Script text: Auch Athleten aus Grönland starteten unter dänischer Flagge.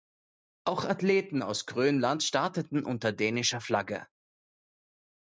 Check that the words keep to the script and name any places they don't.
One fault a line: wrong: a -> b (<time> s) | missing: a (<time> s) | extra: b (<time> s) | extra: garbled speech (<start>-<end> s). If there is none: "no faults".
no faults